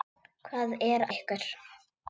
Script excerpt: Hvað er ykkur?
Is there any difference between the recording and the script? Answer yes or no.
no